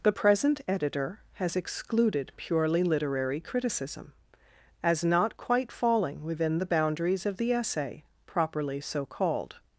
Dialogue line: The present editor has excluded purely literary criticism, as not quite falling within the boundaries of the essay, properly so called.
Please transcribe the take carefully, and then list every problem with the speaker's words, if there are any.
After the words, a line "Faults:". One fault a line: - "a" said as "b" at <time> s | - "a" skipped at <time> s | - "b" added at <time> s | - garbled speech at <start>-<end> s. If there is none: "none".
The present editor has excluded purely literary criticism, as not quite falling within the boundaries of the essay, properly so called.
Faults:
none